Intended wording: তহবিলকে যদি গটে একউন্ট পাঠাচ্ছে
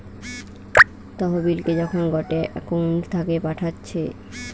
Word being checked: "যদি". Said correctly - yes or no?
no